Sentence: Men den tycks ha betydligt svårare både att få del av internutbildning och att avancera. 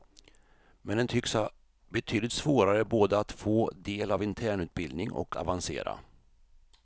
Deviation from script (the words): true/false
true